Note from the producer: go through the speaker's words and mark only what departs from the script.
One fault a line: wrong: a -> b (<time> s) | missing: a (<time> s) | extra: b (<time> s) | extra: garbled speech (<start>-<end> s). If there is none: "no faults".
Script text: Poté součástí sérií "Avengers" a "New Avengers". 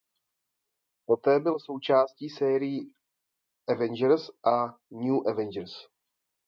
extra: byl (1.4 s)